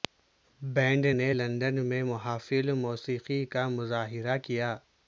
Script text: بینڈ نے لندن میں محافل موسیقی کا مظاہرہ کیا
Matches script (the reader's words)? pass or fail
pass